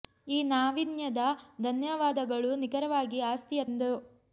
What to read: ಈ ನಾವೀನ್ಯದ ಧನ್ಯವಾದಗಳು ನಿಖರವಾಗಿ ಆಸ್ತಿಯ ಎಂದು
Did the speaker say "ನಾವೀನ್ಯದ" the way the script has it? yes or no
yes